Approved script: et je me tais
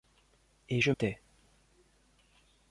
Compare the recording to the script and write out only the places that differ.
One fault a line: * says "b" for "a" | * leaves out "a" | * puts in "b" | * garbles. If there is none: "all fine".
* leaves out "me"